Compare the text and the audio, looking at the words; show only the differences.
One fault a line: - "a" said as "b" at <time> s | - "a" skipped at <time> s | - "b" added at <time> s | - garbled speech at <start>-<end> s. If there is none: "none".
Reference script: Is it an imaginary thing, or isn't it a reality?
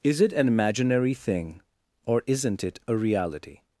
none